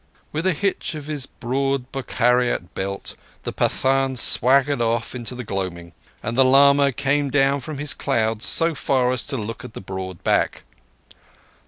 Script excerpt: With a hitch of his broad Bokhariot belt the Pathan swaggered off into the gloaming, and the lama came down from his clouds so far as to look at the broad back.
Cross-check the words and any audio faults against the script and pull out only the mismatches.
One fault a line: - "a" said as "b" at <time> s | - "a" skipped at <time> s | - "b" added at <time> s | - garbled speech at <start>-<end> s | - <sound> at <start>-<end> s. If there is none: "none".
none